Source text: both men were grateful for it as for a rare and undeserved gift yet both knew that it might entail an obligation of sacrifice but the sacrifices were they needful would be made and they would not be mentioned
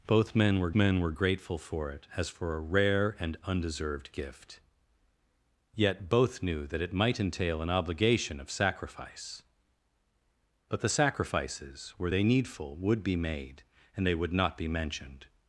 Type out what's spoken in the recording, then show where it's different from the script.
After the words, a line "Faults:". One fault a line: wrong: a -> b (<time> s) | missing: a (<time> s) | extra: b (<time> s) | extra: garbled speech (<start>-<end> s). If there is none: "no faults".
both men were men were grateful for it as for a rare and undeserved gift yet both knew that it might entail an obligation of sacrifice but the sacrifices were they needful would be made and they would not be mentioned
Faults:
extra: men were (0.7 s)